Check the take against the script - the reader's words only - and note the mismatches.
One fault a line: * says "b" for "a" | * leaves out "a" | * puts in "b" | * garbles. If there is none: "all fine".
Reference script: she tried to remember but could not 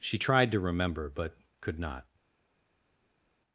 all fine